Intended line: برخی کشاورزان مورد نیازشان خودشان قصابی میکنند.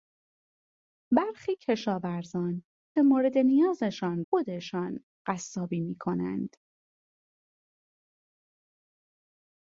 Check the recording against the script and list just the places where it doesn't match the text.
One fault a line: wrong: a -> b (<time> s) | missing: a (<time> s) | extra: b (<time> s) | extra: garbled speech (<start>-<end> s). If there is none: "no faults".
no faults